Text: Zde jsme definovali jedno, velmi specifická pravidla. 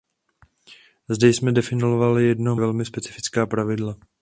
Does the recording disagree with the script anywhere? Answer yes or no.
no